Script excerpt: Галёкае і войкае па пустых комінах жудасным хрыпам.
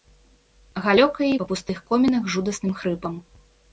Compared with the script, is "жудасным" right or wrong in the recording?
right